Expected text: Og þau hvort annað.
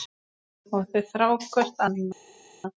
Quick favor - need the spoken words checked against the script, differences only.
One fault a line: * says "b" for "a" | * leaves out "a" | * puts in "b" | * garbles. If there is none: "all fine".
* puts in "þrá"